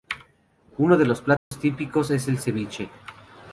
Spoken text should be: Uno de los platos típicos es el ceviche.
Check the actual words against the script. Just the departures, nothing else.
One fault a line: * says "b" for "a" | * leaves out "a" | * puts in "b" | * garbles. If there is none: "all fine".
all fine